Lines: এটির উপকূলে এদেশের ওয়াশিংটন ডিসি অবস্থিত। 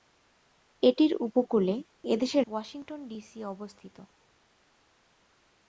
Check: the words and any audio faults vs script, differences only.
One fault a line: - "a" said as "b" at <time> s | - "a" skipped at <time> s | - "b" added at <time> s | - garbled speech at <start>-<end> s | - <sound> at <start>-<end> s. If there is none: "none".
none